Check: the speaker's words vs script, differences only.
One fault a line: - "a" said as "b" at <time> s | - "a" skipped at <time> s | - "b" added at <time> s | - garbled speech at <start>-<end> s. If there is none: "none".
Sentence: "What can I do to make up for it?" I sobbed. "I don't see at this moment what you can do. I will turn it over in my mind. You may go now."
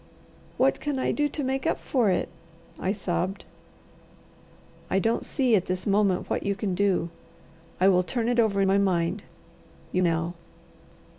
- "in" skipped at 8.6 s
- "may go" skipped at 10.0 s